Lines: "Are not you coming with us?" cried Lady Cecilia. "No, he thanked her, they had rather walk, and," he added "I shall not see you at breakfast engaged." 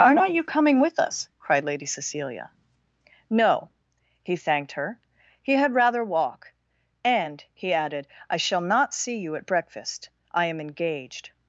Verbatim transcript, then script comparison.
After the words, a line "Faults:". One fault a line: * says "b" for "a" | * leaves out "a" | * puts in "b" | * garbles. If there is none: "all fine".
"Are not you coming with us?" cried Lady Cecilia. "No, he thanked her, he had rather walk, and," he added "I shall not see you at breakfast I am engaged."
Faults:
* says "he" for "they"
* puts in "I am"